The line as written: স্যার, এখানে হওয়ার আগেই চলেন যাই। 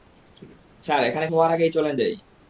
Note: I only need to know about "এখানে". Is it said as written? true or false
true